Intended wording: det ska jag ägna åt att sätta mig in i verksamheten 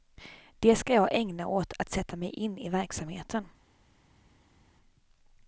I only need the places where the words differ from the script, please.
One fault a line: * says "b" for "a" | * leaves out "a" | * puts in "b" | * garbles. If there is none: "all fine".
all fine